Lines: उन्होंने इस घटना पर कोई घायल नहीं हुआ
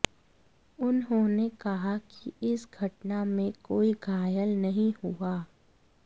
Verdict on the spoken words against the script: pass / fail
fail